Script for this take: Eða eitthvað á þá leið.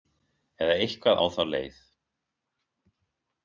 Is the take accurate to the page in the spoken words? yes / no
yes